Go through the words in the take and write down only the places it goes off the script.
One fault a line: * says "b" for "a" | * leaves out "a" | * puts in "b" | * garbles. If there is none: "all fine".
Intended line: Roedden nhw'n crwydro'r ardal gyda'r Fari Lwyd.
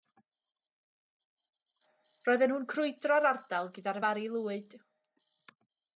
all fine